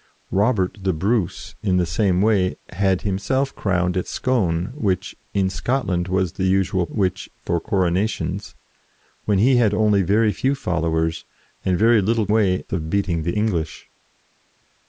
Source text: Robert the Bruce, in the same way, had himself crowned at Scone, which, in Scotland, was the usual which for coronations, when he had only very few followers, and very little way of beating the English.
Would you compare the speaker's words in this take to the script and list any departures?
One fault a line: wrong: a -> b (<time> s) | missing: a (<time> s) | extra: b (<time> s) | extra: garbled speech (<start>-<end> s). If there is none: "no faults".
no faults